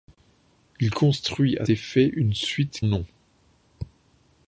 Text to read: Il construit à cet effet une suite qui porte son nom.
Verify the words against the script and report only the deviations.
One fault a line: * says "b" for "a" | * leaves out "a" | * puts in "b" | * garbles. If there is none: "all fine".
* leaves out "cet"
* leaves out "qui porte son"